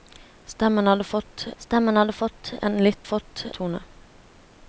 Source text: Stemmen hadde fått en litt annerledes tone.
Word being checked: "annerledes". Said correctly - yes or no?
no